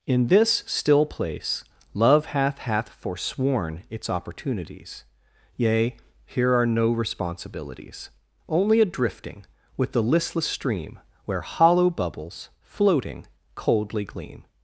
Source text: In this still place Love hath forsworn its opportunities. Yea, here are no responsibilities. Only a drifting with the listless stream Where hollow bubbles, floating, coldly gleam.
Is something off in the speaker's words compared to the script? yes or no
yes